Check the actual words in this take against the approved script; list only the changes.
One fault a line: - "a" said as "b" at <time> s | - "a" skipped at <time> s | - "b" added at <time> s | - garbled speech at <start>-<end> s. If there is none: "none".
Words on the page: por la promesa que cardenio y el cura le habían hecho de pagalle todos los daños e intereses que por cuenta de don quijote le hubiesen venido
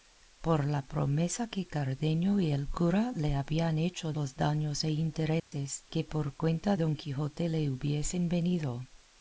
- "de pagalle todos" skipped at 4.1 s
- "de" skipped at 6.8 s